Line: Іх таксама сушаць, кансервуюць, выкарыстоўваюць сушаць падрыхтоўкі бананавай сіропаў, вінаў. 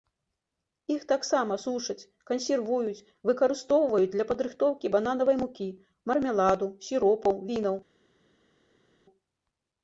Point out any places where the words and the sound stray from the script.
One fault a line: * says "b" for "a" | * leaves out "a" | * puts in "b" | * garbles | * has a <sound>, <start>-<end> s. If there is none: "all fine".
* says "для" for "сушаць"
* puts in "мукі мармеладу"